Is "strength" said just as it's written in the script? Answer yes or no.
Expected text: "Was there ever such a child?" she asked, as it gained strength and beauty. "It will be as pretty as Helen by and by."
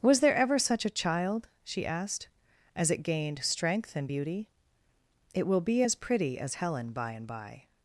yes